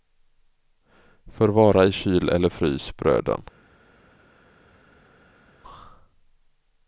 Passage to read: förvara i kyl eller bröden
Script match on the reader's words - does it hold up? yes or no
no